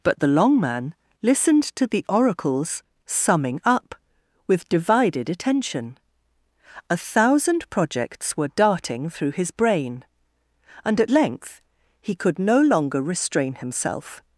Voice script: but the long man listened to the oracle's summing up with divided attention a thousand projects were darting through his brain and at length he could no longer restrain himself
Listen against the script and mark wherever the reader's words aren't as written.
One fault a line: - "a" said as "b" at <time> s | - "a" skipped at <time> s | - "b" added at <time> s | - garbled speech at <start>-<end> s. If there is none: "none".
none